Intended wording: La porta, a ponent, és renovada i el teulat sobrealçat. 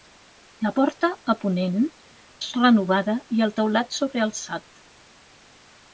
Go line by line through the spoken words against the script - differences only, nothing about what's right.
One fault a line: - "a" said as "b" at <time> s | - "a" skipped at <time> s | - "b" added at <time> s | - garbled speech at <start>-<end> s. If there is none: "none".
none